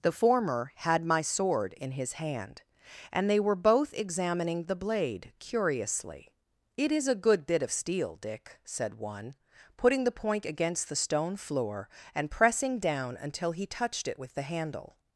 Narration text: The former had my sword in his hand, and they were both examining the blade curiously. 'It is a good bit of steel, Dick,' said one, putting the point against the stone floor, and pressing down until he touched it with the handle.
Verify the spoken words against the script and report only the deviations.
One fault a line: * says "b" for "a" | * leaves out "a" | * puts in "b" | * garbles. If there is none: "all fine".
all fine